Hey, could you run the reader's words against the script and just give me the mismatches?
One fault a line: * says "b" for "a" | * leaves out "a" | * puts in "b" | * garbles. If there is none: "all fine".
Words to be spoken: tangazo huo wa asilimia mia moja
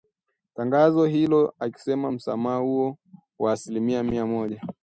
* puts in "hilo akisema msamaha"